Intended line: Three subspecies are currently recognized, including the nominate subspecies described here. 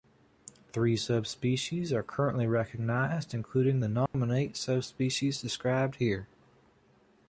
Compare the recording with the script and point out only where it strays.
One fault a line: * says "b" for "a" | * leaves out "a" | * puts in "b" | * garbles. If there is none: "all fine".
all fine